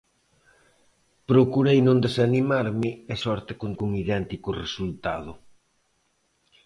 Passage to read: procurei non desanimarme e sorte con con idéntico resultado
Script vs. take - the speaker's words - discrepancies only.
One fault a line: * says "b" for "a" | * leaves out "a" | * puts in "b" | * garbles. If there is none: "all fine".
all fine